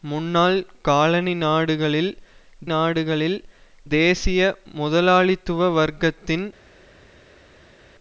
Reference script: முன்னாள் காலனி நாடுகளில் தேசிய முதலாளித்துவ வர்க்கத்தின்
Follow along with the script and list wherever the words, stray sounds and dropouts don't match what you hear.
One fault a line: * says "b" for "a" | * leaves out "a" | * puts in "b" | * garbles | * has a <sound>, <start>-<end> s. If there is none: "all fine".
* puts in "நாடுகளில்"